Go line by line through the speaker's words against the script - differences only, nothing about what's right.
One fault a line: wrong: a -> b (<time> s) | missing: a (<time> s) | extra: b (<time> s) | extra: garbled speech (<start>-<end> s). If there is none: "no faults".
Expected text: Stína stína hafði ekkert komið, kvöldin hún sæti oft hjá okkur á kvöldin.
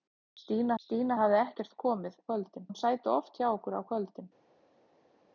no faults